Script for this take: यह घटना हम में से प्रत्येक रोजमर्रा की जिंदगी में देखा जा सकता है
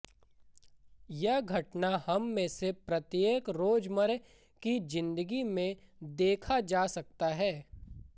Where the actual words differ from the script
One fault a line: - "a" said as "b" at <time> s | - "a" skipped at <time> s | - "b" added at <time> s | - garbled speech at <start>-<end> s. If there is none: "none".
none